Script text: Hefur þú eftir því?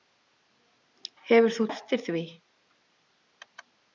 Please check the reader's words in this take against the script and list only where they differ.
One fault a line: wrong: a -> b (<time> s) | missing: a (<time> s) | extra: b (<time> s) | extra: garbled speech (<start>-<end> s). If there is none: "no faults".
no faults